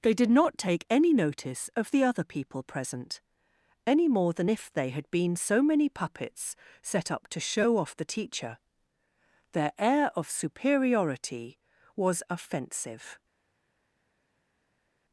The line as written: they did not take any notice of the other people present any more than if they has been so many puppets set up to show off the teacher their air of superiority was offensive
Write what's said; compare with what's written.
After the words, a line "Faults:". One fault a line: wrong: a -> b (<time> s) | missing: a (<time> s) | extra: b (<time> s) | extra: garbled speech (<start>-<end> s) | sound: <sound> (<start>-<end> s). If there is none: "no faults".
they did not take any notice of the other people present any more than if they had been so many puppets set up to show off the teacher their air of superiority was offensive
Faults:
wrong: has -> had (4.9 s)